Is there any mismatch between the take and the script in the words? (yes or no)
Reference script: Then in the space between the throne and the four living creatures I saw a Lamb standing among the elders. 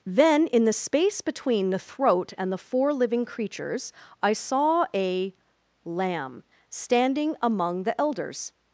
yes